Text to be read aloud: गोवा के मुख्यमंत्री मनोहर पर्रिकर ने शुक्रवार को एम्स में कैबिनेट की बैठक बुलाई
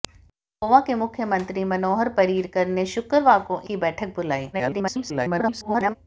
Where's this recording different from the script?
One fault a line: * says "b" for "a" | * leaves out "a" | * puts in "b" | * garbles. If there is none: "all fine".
* leaves out "एम्स में कैबिनेट"
* garbles